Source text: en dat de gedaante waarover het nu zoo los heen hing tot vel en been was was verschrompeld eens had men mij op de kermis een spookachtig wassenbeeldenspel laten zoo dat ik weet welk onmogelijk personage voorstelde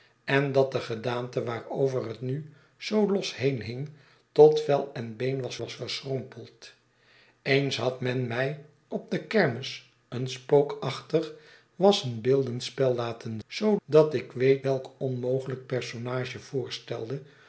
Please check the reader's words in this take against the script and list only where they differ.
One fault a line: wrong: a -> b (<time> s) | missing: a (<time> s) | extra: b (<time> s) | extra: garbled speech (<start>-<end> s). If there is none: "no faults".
no faults